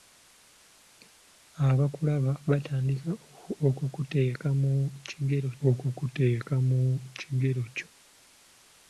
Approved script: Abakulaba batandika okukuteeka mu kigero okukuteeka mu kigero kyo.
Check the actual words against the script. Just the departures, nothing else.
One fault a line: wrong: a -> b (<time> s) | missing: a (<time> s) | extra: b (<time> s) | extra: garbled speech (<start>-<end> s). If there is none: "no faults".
no faults